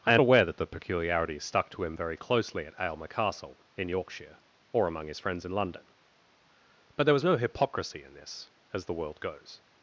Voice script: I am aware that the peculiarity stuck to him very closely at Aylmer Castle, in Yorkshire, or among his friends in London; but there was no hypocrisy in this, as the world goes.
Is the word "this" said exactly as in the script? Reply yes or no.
yes